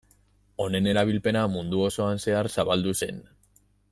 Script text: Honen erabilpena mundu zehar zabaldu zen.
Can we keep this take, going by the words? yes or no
no